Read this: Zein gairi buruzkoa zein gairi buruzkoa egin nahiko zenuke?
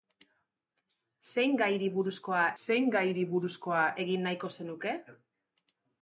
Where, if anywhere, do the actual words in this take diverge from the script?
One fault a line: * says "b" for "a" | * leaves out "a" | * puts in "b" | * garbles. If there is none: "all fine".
all fine